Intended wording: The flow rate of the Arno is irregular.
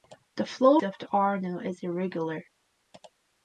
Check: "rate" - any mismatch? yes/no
yes